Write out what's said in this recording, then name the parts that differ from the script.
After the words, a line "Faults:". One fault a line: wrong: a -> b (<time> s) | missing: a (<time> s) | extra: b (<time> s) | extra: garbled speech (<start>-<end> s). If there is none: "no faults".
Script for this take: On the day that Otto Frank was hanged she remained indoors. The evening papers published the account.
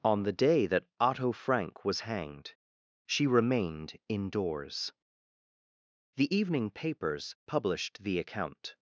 On the day that Otto Frank was hanged she remained indoors. The evening papers published the account.
Faults:
no faults